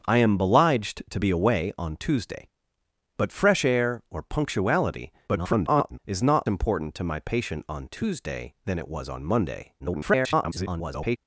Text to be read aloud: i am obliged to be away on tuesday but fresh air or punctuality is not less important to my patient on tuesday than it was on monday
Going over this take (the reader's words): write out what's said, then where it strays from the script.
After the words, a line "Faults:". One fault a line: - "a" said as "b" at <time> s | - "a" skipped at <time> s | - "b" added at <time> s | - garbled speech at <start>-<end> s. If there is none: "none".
i am obliged to be away on tuesday but fresh air or punctuality [garbled] is not important to my patient on tuesday than it was on monday [garbled]
Faults:
- garbled speech at 5.3-6.0 s
- "less" skipped at 6.5 s
- garbled speech at 9.8-11.2 s